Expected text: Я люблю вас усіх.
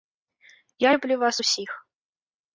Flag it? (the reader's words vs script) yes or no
no